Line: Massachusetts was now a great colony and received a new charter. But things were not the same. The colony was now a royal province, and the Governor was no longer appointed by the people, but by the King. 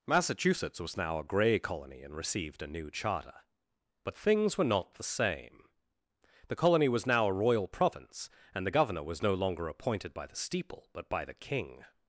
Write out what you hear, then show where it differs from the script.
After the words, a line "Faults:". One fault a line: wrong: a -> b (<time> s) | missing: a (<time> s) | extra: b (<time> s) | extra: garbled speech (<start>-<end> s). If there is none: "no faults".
Massachusetts was now a grey colony and received a new charter. But things were not the same. The colony was now a royal province, and the Governor was no longer appointed by the steeple, but by the King.
Faults:
wrong: great -> grey (1.2 s)
wrong: people -> steeple (10.4 s)